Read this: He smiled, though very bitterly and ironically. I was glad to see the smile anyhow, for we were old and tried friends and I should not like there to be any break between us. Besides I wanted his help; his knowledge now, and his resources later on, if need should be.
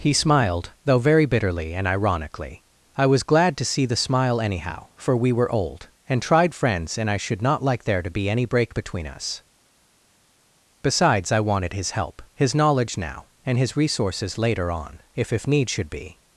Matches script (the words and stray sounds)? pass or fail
fail